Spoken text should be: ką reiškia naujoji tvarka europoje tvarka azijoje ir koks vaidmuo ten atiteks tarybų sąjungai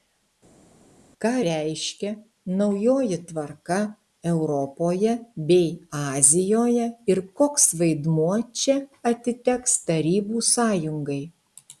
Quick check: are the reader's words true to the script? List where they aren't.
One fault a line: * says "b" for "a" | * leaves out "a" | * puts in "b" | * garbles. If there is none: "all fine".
* says "bei" for "tvarka"
* says "čia" for "ten"